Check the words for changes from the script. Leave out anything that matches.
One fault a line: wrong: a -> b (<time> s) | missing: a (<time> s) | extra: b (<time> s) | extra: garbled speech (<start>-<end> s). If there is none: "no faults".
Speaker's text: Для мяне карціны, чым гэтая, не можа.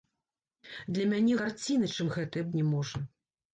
no faults